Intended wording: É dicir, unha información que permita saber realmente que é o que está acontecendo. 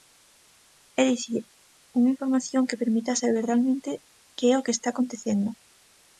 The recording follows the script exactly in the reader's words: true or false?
true